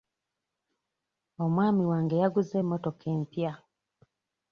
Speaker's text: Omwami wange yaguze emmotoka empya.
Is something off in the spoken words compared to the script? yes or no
no